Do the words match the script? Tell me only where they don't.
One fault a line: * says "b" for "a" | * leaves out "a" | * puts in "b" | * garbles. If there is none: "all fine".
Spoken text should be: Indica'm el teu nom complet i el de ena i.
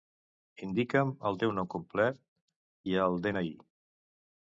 all fine